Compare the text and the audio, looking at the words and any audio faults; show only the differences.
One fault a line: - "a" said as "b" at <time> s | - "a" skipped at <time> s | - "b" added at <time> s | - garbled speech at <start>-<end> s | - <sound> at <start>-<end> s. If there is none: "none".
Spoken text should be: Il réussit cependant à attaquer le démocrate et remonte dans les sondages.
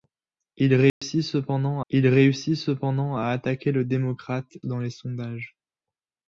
- dropout at 0.9-1.0 s
- "il réussit cependant" added at 1.9 s
- "et remonte" skipped at 4.6 s